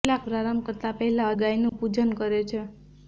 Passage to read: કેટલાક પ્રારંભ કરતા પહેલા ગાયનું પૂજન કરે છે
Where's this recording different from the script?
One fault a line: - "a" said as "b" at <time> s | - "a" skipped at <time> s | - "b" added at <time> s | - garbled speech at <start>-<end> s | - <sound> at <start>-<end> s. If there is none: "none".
- dropout at 1.7-1.7 s